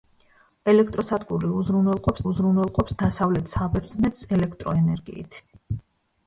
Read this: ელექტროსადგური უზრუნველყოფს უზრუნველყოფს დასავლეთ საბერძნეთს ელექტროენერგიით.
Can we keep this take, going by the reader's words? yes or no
yes